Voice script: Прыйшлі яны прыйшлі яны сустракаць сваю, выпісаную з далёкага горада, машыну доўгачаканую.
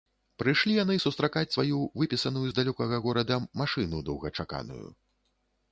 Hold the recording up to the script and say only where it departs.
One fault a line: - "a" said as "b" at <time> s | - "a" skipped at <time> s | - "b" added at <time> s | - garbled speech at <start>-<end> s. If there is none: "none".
- "прыйшлі яны" skipped at 0.9 s